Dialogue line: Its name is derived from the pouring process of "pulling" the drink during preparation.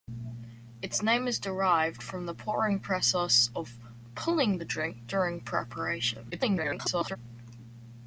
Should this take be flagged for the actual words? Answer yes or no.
yes